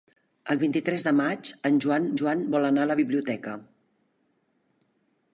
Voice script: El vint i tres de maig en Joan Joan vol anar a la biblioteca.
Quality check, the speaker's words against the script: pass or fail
pass